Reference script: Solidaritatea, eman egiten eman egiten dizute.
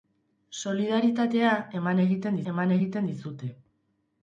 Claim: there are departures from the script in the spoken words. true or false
false